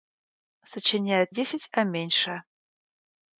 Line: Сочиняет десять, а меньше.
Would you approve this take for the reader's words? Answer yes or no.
yes